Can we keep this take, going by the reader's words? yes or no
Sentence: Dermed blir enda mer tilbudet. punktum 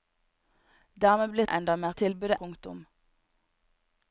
yes